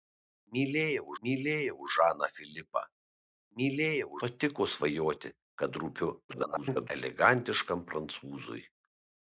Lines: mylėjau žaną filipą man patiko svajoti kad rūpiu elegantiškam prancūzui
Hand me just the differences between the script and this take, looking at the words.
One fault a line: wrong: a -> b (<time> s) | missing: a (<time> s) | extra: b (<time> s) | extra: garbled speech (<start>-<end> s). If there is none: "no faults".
extra: mylėjau (1.3 s)
wrong: man -> mylėjau (3.6 s)
extra: garbled speech (6.3-6.9 s)